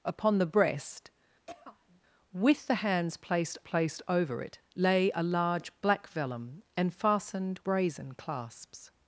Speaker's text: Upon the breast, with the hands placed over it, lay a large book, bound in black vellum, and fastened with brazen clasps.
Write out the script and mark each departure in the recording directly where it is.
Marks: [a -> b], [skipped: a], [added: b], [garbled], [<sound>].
Upon the breast, [throat clearing] with the hands placed [added: placed] over it, lay a large [skipped: book, bound in] black vellum, and fastened [skipped: with] brazen clasps.